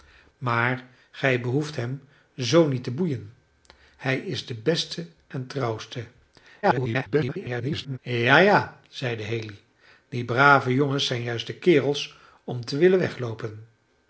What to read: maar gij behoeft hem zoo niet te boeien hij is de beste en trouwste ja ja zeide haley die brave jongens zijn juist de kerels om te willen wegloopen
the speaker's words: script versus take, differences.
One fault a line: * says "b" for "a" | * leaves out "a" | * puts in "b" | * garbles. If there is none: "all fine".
* garbles